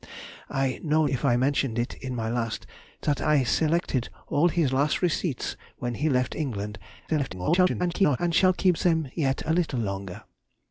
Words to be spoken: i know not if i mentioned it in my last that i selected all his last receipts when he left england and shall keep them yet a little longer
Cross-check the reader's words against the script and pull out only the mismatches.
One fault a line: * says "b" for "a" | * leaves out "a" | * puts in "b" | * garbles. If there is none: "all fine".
* leaves out "not"
* garbles